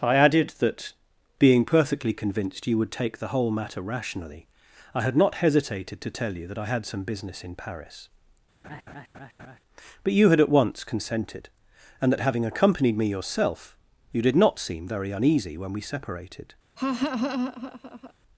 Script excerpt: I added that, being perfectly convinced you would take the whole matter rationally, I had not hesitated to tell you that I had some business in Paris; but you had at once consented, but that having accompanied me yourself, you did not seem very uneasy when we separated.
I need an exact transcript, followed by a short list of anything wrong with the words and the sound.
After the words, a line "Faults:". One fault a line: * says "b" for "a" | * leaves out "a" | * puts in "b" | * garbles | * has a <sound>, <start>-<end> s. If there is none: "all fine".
I added that, being perfectly convinced you would take the whole matter rationally, I had not hesitated to tell you that I had some business in Paris; but you had at once consented, and that having accompanied me yourself, you did not seem very uneasy when we separated.
Faults:
* has a laugh, 8.6-9.6 s
* says "and" for "but"
* has a laugh, 16.8-18.1 s